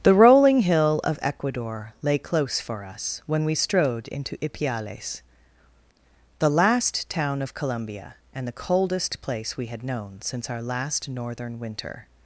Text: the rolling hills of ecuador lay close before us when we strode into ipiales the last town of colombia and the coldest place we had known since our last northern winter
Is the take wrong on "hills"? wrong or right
wrong